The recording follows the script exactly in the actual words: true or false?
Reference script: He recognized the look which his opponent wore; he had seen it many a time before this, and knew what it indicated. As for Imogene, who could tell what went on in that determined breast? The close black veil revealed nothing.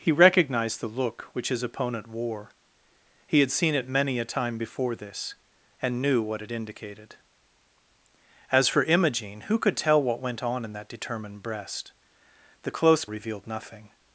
false